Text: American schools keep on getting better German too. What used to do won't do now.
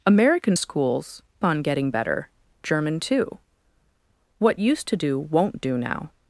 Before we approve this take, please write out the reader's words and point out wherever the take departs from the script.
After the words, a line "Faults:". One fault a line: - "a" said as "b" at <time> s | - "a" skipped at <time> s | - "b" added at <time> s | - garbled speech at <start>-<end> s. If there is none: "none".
American schools on getting better German too. What used to do won't do now.
Faults:
- "keep" skipped at 1.2 s